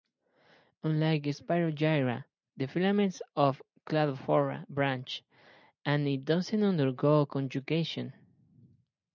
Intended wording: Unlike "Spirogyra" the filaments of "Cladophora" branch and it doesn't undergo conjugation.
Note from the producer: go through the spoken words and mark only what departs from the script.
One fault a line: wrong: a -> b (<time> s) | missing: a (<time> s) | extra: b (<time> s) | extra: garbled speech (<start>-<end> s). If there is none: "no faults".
no faults